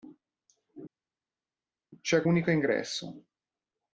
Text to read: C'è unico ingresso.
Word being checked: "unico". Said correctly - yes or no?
yes